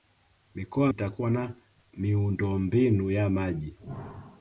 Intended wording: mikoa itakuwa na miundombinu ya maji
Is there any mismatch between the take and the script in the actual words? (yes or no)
no